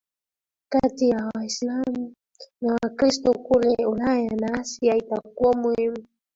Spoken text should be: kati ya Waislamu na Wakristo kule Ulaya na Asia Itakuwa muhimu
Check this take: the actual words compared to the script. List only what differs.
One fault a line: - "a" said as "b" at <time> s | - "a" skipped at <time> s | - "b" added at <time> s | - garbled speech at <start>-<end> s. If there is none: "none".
none